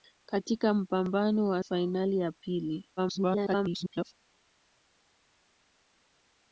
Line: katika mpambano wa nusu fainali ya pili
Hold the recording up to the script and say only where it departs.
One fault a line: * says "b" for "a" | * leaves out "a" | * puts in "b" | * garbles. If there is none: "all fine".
* leaves out "nusu"
* garbles